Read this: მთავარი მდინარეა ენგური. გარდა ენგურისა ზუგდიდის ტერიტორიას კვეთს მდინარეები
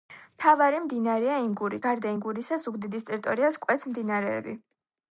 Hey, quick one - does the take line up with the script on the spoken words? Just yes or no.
yes